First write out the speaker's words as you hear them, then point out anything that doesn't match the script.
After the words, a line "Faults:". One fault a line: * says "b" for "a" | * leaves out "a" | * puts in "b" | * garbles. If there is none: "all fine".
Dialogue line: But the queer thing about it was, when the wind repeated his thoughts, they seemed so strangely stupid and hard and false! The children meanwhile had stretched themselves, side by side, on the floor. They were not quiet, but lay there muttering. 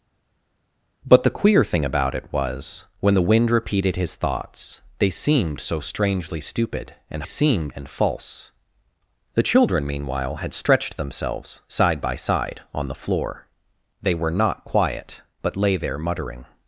But the queer thing about it was, when the wind repeated his thoughts, they seemed so strangely stupid and seemed and false! The children meanwhile had stretched themselves, side by side, on the floor. They were not quiet, but lay there muttering.
Faults:
* says "seemed" for "hard"